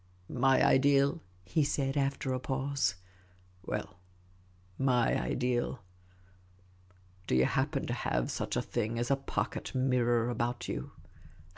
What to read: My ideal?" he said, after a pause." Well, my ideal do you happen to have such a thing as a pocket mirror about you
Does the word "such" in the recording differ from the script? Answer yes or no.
no